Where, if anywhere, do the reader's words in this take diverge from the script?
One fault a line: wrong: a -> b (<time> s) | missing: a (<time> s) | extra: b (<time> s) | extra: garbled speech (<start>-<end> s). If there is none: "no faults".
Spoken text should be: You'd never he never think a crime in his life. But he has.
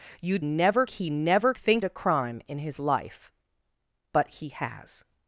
no faults